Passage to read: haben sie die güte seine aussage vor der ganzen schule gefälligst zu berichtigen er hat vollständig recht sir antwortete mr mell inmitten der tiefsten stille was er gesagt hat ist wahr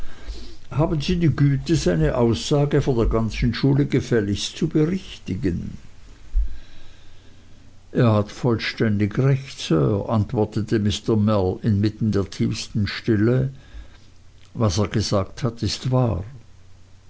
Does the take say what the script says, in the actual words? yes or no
yes